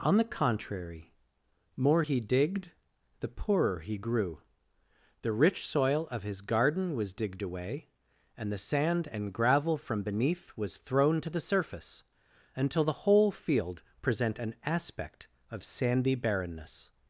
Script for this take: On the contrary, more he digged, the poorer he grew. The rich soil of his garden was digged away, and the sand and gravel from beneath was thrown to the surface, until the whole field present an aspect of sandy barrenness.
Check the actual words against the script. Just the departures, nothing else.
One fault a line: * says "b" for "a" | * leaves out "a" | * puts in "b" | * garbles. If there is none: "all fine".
all fine